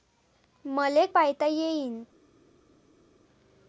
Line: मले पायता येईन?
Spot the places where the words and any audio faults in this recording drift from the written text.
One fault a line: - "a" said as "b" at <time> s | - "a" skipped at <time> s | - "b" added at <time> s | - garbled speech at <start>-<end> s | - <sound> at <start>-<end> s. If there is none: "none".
none